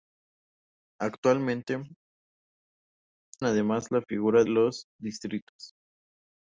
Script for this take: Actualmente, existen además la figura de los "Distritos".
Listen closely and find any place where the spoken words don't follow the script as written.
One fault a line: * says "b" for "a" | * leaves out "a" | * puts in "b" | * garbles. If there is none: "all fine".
* leaves out "existen"
* leaves out "de"